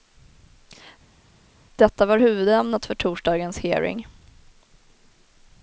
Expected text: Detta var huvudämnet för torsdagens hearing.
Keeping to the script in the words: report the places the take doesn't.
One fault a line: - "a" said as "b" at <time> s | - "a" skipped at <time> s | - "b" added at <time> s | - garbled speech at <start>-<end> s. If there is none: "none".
none